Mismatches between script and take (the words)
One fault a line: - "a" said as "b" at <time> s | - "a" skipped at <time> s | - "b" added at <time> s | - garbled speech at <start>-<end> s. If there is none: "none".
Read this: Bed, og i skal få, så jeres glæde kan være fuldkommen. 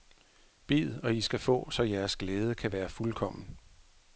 none